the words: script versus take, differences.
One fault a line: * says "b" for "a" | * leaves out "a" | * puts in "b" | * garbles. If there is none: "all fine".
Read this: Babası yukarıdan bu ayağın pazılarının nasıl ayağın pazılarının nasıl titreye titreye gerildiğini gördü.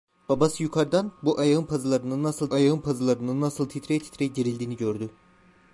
all fine